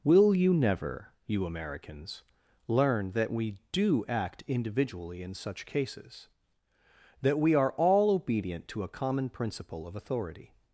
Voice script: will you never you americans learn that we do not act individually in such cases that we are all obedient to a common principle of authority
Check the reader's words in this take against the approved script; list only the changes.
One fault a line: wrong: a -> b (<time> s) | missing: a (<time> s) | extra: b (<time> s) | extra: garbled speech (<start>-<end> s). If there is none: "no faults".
missing: not (4.1 s)